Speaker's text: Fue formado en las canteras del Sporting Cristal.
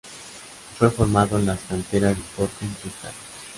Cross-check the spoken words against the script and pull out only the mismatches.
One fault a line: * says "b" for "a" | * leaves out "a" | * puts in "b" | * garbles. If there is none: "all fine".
* leaves out "del"